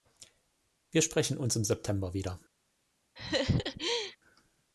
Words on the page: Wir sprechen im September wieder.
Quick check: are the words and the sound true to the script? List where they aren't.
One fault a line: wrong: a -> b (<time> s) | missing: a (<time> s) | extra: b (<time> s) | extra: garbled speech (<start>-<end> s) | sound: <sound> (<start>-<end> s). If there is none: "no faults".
extra: uns (1.4 s)
sound: laugh (3.2-4.2 s)